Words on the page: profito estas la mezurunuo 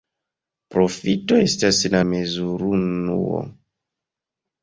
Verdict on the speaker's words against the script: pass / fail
pass